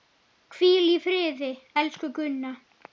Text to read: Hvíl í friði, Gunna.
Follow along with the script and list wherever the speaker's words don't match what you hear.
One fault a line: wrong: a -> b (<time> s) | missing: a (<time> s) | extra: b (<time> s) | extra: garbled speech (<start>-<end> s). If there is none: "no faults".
extra: elsku (1.8 s)